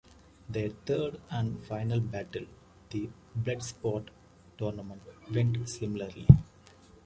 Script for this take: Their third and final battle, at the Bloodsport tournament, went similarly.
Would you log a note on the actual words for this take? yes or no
yes